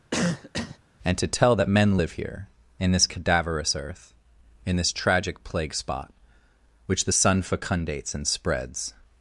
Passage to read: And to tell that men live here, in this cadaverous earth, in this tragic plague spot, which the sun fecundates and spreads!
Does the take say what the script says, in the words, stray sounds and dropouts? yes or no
no